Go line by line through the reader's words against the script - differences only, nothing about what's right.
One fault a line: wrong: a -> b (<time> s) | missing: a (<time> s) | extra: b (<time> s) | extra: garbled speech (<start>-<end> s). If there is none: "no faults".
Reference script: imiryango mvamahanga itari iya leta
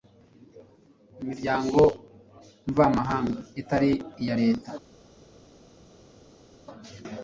no faults